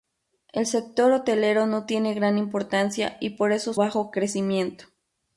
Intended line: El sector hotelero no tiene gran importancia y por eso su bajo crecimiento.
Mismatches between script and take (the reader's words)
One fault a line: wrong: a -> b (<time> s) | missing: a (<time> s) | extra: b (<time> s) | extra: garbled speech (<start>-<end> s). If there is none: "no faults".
missing: su (3.8 s)